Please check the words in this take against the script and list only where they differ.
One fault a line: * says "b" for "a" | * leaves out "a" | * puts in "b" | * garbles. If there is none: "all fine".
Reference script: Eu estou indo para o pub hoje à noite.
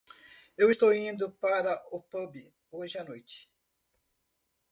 all fine